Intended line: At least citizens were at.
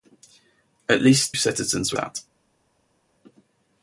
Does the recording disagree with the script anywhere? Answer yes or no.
no